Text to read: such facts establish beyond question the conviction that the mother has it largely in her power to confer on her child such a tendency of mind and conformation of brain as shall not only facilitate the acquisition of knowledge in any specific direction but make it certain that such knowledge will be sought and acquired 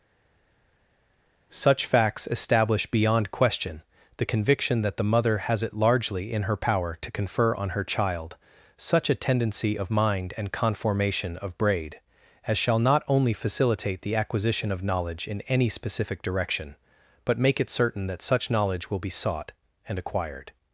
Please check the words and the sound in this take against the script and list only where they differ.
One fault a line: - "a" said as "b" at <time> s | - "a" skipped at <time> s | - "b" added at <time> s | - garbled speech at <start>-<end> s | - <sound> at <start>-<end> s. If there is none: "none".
- "brain" said as "braid" at 11.6 s